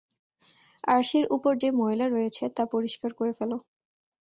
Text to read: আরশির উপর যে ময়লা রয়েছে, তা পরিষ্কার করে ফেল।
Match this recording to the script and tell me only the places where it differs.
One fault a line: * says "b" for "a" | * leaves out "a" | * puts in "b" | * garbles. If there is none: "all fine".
all fine